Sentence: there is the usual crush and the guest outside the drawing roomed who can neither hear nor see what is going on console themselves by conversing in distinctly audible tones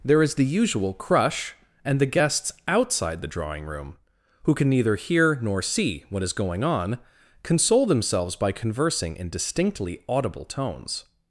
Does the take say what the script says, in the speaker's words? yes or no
no